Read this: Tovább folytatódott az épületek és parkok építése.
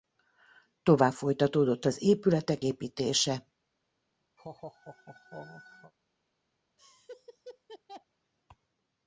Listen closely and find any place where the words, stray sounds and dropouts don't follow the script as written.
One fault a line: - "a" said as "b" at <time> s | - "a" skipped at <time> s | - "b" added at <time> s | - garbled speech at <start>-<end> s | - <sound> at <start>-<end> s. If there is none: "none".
- "és parkok" skipped at 2.6 s
- laugh at 4.4-5.9 s
- laugh at 6.8-8.1 s